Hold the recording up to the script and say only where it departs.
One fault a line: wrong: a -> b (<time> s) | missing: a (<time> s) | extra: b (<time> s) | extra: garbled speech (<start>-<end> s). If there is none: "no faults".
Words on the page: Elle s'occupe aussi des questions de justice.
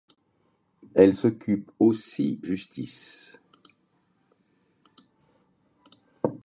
missing: des questions de (2.4 s)